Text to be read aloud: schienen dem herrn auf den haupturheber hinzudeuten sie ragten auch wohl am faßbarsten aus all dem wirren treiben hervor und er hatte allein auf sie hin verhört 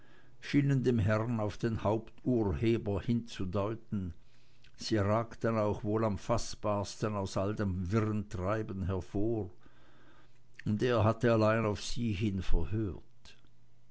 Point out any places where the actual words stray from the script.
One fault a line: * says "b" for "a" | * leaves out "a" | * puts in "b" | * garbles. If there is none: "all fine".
all fine